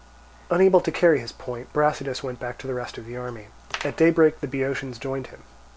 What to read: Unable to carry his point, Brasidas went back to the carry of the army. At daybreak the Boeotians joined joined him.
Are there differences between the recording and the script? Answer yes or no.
yes